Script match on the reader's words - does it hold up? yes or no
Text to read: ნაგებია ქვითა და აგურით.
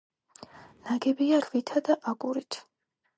yes